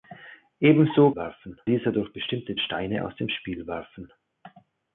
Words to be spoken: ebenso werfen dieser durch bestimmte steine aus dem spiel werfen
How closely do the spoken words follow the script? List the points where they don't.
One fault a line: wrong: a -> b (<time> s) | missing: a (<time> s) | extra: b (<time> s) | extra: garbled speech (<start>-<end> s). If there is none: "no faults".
no faults